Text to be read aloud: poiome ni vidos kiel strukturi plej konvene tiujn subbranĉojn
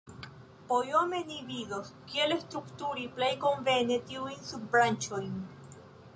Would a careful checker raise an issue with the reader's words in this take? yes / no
no